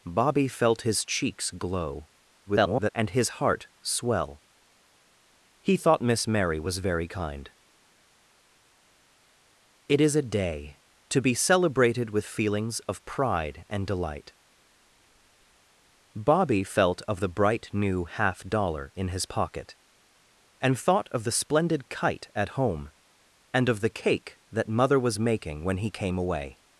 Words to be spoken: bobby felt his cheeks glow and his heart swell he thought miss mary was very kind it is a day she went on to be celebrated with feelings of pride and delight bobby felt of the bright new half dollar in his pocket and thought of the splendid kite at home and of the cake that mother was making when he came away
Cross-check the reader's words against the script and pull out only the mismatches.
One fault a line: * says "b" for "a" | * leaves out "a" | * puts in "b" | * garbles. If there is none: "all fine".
* garbles
* leaves out "she went on"